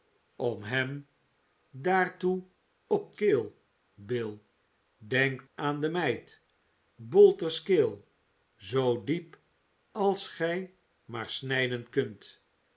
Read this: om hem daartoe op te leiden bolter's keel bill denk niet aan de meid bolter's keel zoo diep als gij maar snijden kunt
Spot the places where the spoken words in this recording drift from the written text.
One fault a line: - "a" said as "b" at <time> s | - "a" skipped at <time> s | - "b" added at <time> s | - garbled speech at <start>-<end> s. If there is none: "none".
- "te leiden bolter's" skipped at 3.1 s
- "niet" skipped at 5.5 s